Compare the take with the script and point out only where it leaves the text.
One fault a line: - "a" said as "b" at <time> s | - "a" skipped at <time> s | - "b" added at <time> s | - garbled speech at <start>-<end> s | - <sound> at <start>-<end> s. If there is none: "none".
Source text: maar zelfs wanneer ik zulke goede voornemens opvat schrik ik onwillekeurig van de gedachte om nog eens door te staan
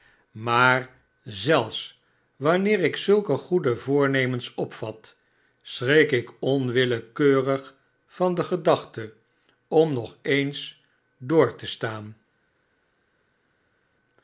none